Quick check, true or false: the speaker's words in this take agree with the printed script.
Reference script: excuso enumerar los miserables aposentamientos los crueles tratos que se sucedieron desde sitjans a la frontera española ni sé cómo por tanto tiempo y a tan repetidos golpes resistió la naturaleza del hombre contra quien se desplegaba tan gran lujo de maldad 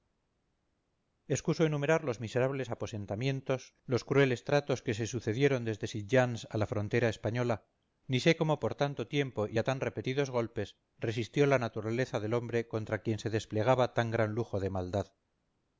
true